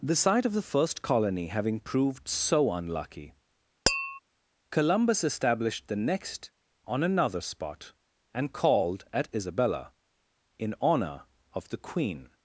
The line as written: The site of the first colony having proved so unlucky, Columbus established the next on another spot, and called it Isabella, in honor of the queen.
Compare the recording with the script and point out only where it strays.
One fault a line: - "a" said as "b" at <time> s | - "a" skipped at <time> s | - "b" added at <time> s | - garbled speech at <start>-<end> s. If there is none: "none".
- "it" said as "at" at 9.1 s